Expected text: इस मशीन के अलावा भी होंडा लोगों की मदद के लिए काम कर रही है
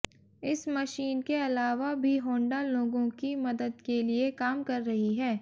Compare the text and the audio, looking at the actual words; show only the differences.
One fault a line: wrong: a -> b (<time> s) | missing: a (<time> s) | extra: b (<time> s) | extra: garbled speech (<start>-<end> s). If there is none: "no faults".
no faults